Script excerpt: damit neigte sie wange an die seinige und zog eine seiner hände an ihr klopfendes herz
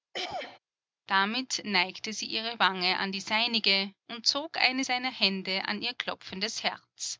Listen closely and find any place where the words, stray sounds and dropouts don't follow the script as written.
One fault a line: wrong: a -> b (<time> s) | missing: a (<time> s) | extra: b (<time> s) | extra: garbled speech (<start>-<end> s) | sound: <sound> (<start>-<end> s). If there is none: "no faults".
sound: throat clearing (0.1-0.6 s)
extra: ihre (2.3 s)